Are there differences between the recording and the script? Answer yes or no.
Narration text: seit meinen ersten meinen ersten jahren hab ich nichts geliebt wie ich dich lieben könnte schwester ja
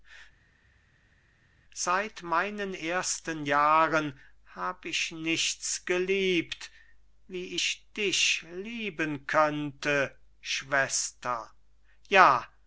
yes